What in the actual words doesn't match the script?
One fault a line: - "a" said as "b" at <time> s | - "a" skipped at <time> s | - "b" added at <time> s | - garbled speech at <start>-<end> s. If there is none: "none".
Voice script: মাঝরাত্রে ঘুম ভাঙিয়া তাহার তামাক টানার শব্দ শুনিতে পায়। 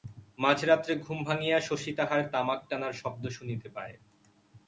- "শশী" added at 1.6 s